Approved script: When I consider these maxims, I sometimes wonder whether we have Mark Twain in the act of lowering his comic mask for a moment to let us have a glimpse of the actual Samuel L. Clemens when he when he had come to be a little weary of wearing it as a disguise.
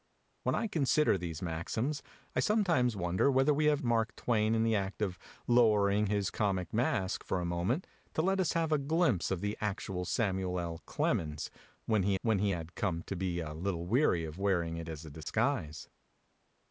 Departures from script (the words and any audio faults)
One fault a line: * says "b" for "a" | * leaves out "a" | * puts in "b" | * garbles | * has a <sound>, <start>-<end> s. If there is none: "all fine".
* has a dropout, 15.2-15.3 s